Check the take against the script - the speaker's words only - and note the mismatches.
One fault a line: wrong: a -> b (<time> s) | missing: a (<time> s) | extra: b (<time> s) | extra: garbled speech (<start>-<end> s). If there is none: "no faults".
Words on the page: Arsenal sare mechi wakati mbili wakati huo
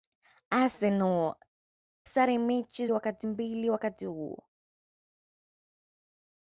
no faults